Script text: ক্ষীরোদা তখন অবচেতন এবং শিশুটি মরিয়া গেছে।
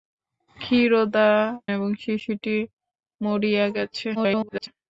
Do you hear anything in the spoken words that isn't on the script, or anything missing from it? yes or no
yes